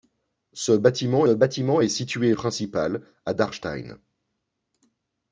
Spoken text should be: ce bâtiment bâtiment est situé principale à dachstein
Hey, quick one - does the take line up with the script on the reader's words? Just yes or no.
yes